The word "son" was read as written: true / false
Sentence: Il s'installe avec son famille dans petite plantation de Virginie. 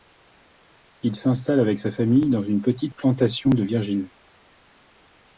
false